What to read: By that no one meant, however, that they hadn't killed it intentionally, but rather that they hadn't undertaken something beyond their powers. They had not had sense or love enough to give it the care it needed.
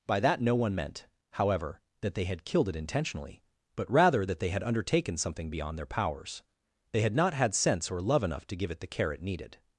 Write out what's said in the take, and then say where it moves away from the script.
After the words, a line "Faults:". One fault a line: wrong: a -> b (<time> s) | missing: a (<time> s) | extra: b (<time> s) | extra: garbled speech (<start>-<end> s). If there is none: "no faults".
By that no one meant, however, that they had killed it intentionally, but rather that they had undertaken something beyond their powers. They had not had sense or love enough to give it the care it needed.
Faults:
wrong: hadn't -> had (2.2 s)
wrong: hadn't -> had (4.5 s)